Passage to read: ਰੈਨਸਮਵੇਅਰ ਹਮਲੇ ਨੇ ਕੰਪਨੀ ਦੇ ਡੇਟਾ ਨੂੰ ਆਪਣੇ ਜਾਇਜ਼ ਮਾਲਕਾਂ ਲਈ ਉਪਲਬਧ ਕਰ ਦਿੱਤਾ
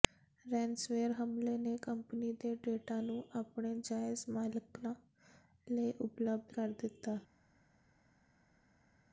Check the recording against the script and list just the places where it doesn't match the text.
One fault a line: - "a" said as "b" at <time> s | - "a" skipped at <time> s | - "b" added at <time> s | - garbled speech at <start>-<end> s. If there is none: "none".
none